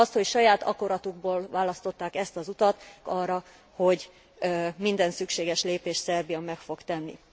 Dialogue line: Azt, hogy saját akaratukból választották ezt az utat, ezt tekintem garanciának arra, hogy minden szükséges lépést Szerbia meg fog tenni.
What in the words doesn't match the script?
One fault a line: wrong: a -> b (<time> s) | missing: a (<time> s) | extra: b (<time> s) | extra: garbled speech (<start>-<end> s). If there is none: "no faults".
missing: ezt tekintem garanciának (2.8 s)